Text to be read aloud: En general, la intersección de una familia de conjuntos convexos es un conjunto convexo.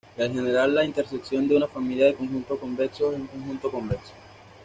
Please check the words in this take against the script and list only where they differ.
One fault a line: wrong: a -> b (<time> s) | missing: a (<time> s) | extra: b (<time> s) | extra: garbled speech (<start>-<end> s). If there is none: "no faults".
no faults